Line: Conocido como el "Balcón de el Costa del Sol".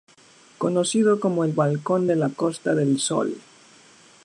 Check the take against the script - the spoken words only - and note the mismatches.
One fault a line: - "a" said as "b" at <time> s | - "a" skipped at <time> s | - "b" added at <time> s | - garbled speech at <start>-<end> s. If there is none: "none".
- "el" said as "la" at 2.2 s